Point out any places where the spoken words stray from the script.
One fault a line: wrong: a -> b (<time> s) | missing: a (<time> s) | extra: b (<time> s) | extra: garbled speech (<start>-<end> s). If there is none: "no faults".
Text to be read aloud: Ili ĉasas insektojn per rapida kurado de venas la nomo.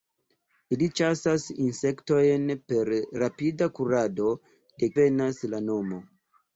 no faults